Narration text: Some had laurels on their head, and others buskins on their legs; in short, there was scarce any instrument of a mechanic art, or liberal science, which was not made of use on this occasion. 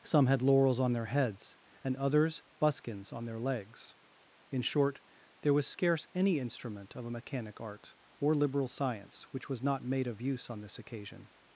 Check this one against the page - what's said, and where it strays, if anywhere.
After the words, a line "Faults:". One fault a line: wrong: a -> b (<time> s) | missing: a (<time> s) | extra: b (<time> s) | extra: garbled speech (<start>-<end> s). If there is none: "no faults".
Some had laurels on their heads, and others buskins on their legs; in short, there was scarce any instrument of a mechanic art, or liberal science, which was not made of use on this occasion.
Faults:
wrong: head -> heads (1.1 s)